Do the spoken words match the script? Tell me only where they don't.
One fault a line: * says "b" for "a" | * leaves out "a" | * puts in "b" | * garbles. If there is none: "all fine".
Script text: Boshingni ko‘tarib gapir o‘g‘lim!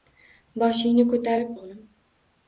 * leaves out "gapir"